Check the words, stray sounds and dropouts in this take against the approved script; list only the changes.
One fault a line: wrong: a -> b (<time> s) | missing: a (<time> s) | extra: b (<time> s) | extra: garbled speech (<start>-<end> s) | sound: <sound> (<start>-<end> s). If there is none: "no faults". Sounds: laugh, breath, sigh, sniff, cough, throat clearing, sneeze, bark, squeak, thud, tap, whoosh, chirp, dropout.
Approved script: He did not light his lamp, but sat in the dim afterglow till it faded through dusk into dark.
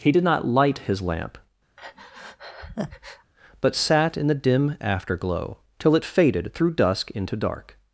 sound: breath (1.8-3.3 s)